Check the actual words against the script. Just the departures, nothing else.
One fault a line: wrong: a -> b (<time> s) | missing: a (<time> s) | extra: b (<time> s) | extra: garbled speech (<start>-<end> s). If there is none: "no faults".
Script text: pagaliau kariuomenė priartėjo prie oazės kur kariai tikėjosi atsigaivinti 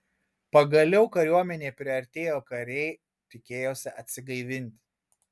missing: prie oazės kur (2.4 s)